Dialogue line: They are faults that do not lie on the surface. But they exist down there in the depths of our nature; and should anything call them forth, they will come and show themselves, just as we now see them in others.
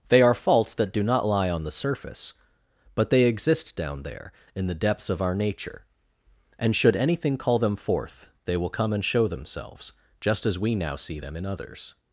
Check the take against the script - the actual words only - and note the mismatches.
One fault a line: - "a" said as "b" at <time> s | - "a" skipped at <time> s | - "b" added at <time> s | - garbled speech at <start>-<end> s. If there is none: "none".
none